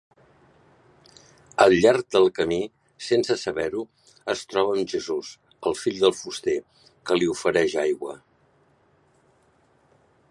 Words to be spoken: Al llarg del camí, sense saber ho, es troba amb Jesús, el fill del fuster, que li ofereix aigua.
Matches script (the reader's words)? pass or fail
pass